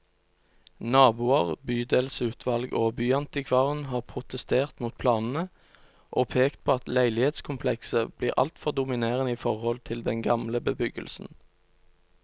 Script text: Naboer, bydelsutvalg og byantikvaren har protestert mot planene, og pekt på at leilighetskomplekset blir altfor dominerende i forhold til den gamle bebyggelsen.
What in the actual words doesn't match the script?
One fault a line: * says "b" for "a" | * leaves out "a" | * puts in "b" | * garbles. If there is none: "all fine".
all fine